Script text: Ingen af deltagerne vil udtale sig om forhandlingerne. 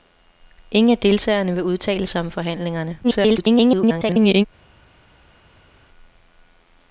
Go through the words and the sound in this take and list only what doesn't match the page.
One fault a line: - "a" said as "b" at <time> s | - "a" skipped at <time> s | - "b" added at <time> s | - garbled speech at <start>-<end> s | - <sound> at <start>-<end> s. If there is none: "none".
- garbled speech at 3.0-4.5 s